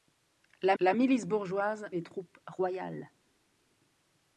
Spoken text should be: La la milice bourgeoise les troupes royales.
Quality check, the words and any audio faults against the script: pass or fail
pass